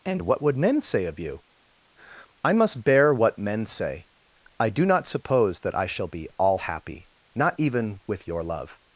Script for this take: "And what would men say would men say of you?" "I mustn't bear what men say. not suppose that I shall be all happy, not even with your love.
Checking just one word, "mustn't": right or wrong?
wrong